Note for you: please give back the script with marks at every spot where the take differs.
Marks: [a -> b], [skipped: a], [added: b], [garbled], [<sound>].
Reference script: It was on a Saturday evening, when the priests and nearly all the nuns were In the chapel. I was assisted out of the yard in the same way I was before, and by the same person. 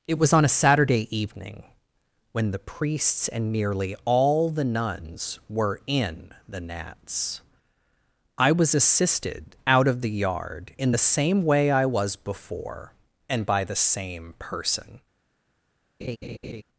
It was on a Saturday evening, when the priests and nearly all the nuns were In the [chapel. -> gnats] I was assisted out of the yard in the same way I was before, and by the same person. [laugh]